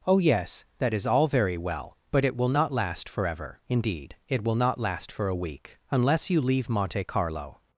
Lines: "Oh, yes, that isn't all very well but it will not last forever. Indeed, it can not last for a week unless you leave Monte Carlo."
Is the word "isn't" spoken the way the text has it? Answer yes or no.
no